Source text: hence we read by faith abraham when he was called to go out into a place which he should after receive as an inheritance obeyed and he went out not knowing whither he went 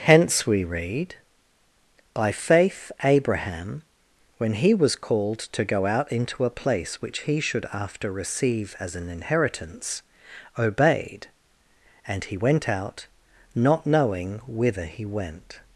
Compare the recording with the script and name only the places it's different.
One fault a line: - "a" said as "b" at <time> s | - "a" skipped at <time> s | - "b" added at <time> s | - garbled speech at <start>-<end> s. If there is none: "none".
none